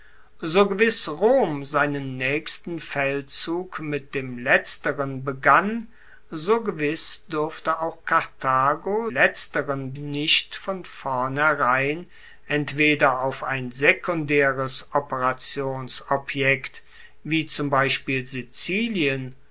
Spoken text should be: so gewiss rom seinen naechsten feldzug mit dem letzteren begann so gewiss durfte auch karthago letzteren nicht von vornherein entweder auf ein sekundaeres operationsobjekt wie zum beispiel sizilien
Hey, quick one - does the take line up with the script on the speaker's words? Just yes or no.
yes